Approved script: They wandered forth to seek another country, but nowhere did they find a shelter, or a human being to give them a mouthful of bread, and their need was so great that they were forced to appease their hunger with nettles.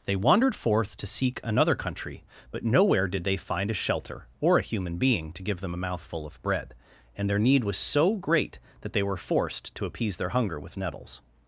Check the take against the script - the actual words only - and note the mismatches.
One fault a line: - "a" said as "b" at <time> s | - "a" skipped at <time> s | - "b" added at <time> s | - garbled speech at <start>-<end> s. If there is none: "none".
none